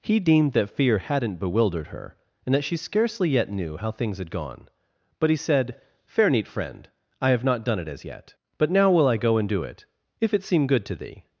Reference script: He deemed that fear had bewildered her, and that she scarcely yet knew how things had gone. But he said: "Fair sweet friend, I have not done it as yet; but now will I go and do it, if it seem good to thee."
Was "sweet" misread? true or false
true